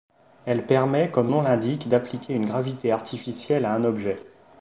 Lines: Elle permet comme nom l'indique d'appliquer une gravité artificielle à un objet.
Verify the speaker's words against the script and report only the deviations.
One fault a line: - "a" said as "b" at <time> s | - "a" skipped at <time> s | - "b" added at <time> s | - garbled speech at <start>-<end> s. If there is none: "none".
none